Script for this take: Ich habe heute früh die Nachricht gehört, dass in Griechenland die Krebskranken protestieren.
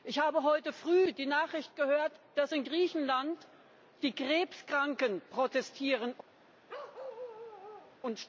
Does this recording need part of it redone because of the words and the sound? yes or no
yes